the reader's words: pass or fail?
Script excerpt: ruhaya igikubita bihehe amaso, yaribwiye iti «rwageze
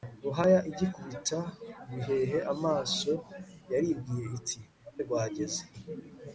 pass